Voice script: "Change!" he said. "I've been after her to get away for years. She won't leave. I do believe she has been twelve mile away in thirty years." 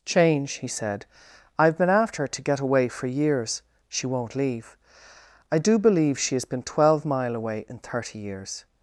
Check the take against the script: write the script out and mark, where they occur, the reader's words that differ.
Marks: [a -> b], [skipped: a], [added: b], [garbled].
"Change!" he said. "I've been after her to get away for years. She won't leave. I do believe she has been twelve mile away in thirty years."